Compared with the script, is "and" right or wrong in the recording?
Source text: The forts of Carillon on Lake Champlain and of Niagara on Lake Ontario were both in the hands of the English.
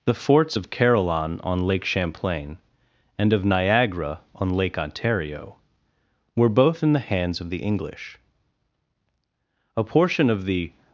right